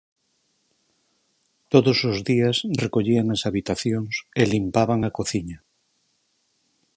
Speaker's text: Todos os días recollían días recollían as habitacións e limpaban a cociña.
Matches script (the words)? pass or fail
fail